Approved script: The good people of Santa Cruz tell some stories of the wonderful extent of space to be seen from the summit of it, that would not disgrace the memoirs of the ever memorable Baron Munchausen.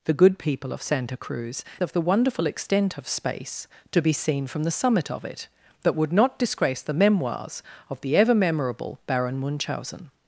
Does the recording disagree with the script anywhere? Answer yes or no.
yes